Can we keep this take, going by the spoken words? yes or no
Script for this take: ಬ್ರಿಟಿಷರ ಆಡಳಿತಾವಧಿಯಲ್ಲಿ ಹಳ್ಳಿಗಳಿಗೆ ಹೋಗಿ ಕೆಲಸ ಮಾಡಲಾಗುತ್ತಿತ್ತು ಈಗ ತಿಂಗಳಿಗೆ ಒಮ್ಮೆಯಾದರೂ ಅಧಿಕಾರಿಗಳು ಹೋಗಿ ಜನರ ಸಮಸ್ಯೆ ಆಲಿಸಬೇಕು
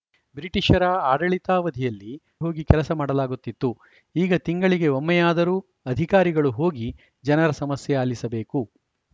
no